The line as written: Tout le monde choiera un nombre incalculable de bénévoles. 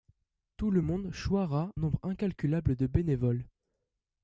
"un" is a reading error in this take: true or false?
true